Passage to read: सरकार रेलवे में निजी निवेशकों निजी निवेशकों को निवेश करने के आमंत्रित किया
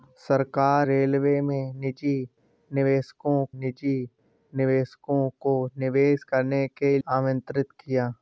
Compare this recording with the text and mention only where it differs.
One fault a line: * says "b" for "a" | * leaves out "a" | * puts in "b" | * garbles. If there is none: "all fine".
all fine